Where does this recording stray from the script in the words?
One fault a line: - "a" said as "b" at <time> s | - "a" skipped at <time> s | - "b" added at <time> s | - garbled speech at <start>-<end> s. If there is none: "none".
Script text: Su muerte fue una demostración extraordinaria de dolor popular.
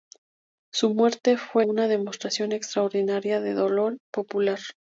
none